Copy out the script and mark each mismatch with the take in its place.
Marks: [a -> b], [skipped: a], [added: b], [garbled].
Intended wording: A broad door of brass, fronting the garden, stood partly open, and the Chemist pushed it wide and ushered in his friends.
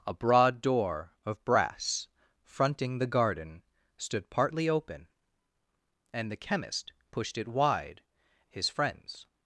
A broad door of brass, fronting the garden, stood partly open, and the Chemist pushed it wide [skipped: and ushered in] his friends.